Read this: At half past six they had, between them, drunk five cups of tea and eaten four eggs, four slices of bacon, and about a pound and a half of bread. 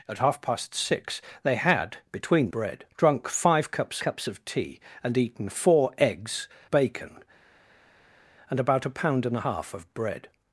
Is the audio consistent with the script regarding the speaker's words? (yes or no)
no